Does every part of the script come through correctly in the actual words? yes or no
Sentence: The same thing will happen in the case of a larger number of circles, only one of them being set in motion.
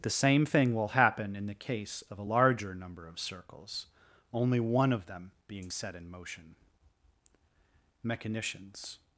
no